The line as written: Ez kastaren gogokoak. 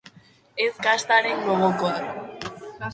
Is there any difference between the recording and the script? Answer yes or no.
no